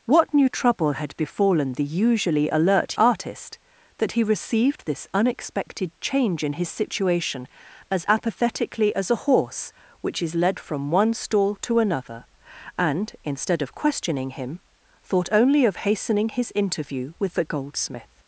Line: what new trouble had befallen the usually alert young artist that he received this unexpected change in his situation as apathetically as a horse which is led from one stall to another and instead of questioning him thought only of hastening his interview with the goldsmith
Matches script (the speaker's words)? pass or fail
fail